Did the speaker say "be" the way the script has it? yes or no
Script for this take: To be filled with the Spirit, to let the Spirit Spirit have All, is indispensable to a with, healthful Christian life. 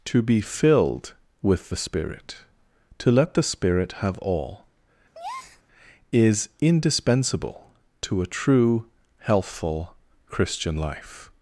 yes